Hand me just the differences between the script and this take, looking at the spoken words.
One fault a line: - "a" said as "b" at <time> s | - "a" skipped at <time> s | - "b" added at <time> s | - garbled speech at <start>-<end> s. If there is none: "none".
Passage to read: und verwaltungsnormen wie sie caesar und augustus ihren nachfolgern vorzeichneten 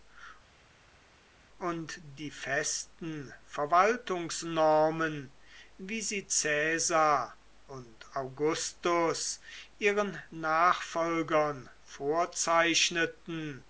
- "die festen" added at 2.0 s